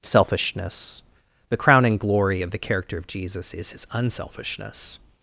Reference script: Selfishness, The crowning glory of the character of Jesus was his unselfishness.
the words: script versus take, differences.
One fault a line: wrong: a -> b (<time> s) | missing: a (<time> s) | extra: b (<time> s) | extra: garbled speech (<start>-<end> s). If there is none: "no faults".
wrong: was -> is (3.5 s)